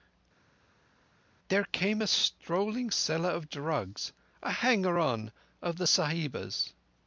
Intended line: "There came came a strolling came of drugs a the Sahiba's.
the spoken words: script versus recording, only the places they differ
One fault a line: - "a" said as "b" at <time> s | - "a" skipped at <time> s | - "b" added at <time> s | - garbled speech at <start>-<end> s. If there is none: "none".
- "came" skipped at 2.0 s
- "came" said as "seller" at 2.9 s
- "hanger on of" added at 4.5 s